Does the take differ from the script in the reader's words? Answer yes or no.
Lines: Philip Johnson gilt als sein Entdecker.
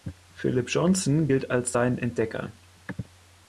no